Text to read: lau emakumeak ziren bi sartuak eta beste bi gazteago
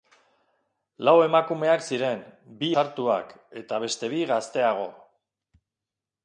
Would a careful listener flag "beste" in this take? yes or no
no